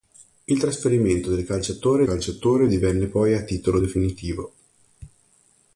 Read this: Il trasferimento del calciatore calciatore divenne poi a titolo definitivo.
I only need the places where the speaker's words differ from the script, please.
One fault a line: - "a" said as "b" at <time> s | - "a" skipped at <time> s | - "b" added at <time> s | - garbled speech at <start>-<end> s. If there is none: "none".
none